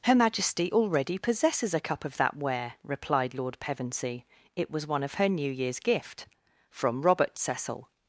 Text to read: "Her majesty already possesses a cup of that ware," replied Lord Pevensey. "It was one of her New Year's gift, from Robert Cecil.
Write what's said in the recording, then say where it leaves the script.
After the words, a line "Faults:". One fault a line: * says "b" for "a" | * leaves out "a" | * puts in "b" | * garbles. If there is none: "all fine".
"Her majesty already possesses a cup of that ware," replied Lord Pevensey. "It was one of her New Year's gift, from Robert Cecil.
Faults:
all fine